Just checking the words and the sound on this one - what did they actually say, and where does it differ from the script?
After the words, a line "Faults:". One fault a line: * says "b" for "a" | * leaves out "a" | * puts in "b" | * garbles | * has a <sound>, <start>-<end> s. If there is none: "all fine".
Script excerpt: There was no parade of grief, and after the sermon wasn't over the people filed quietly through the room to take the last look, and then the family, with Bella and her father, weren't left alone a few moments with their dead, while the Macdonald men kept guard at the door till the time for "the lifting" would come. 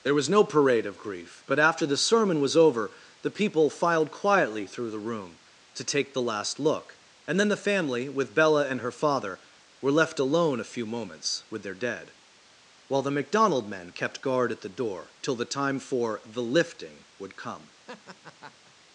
There was no parade of grief, but after the sermon was over the people filed quietly through the room to take the last look, and then the family, with Bella and her father, were left alone a few moments with their dead, while the Macdonald men kept guard at the door till the time for "the lifting" would come.
Faults:
* says "but" for "and"
* says "was" for "wasn't"
* says "were" for "weren't"
* has a laugh, 17.9-18.7 s